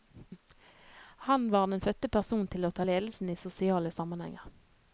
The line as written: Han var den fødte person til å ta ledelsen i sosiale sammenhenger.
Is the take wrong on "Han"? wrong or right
right